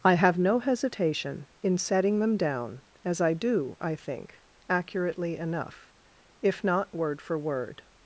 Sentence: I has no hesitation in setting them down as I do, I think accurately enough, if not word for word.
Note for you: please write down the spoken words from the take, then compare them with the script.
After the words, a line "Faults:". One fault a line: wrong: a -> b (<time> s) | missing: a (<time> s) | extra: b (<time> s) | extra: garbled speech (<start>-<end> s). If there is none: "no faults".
I have no hesitation in setting them down as I do, I think accurately enough, if not word for word.
Faults:
wrong: has -> have (0.1 s)